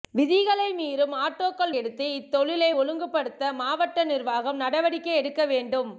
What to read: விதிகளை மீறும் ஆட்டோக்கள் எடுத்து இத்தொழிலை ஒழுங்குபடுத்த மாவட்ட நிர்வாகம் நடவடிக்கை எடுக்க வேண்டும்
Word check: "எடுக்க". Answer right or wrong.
right